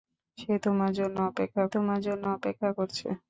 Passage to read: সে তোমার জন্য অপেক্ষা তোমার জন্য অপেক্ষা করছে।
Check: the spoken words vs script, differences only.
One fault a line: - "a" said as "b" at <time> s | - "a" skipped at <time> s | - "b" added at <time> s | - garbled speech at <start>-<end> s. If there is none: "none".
none